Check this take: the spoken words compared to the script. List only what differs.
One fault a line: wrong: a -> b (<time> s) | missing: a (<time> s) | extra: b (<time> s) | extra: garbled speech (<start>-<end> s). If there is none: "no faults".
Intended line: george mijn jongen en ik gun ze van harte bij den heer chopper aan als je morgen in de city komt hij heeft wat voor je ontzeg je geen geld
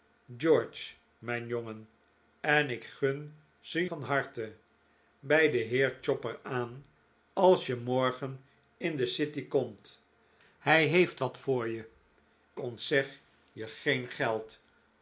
no faults